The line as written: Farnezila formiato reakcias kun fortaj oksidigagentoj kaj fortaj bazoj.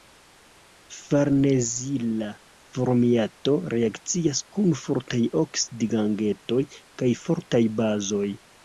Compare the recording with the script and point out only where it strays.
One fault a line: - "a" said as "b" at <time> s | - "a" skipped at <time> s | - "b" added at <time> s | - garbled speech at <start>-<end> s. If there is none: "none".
none